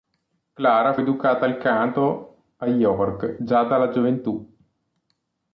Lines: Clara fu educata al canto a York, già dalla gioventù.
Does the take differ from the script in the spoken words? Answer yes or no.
yes